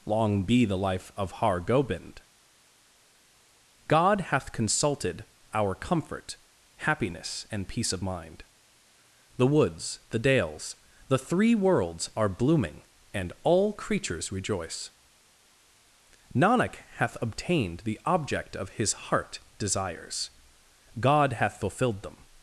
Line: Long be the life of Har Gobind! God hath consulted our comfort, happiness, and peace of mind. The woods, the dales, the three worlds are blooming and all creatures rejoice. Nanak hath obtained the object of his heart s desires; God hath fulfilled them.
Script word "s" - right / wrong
wrong